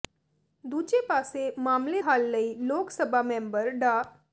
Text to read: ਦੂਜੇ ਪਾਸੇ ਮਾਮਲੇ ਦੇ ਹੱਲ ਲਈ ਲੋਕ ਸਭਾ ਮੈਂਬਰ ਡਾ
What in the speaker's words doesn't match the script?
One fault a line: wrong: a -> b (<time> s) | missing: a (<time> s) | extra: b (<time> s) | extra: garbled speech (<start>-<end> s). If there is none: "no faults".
missing: ਦੇ (2.0 s)